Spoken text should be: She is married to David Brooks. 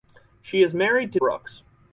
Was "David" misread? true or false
true